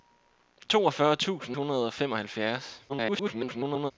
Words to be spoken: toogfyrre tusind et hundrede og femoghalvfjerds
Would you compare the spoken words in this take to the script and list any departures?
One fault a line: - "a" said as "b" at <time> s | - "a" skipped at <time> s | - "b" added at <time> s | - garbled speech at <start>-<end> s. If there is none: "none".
- "et" skipped at 1.6 s
- garbled speech at 2.9-3.9 s